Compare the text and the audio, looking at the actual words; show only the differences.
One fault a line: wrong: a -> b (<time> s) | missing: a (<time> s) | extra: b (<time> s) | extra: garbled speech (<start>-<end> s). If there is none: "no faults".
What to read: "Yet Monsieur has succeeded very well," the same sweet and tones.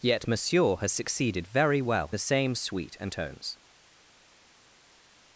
no faults